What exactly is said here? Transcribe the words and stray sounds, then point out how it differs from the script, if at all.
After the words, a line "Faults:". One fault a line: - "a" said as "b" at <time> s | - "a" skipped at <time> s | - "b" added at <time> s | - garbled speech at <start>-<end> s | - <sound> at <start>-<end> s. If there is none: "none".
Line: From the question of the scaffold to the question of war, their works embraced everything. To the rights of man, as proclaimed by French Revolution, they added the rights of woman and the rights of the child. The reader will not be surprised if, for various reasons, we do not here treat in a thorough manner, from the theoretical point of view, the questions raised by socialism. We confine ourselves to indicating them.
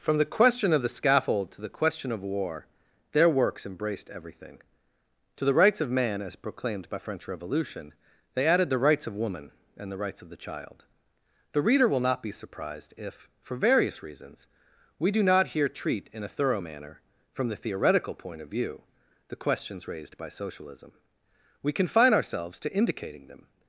From the question of the scaffold to the question of war, their works embraced everything. To the rights of man, as proclaimed by French Revolution, they added the rights of woman and the rights of the child. The reader will not be surprised if, for various reasons, we do not here treat in a thorough manner, from the theoretical point of view, the questions raised by socialism. We confine ourselves to indicating them.
Faults:
none